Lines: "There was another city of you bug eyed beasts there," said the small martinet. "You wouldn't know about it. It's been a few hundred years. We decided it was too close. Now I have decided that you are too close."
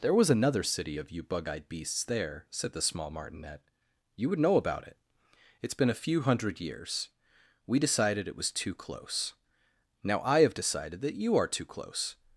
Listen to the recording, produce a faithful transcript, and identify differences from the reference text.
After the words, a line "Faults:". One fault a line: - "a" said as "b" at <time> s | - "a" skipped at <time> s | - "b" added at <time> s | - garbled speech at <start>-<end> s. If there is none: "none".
"There was another city of you bug eyed beasts there," said the small martinet. "You would know about it. It's been a few hundred years. We decided it was too close. Now I have decided that you are too close."
Faults:
- "wouldn't" said as "would" at 4.3 s